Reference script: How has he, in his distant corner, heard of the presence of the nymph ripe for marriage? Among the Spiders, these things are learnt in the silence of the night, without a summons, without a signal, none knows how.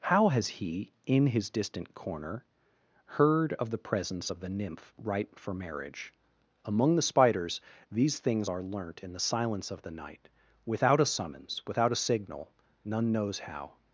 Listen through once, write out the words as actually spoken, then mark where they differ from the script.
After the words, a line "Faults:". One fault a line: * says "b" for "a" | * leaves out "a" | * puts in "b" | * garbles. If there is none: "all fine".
How has he, in his distant corner, heard of the presence of the nymph ripe for marriage? Among the Spiders, these things are learnt in the silence of the night, without a summons, without a signal, none knows how.
Faults:
all fine